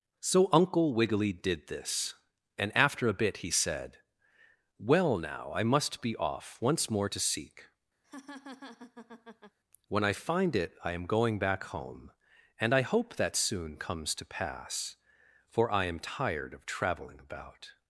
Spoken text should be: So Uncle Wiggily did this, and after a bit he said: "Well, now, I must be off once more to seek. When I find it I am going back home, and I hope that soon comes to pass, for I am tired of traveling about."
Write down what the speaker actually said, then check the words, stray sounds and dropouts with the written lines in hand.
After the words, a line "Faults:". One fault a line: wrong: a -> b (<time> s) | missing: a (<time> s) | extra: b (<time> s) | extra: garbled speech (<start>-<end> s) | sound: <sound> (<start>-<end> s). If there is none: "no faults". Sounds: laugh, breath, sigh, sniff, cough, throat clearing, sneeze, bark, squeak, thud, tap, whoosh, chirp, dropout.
So Uncle Wiggily did this, and after a bit he said: "Well, now, I must be off once more to seek. When I find it I am going back home, and I hope that soon comes to pass, for I am tired of traveling about."
Faults:
sound: laugh (8.0-9.6 s)